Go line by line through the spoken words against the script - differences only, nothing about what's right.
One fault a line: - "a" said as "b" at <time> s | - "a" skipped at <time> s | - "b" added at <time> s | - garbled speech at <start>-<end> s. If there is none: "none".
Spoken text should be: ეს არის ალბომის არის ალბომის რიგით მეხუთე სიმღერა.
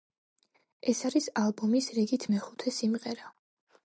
- "არის ალბომის" skipped at 1.9 s